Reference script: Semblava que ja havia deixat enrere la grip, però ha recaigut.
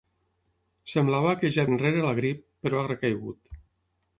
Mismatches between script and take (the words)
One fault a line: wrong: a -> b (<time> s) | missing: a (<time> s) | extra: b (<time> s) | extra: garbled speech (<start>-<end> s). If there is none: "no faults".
missing: havia deixat (1.7 s)